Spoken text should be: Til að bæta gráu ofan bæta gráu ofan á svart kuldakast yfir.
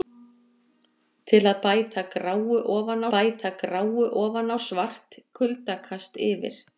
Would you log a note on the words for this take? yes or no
no